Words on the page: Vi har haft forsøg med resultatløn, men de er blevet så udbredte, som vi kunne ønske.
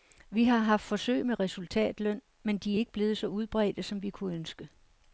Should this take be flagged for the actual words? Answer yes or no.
yes